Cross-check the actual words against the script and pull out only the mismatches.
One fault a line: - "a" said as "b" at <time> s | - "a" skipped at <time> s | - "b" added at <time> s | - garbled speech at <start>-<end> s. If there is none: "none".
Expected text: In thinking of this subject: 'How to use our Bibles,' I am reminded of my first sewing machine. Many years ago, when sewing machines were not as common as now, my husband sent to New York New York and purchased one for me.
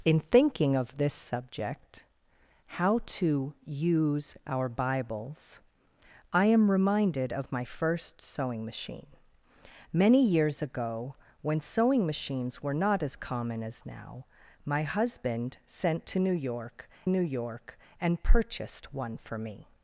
none